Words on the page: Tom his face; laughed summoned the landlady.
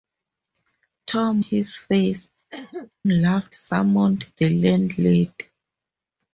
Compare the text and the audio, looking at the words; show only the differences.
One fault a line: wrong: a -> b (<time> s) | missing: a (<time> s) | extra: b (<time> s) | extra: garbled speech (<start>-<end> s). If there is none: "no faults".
no faults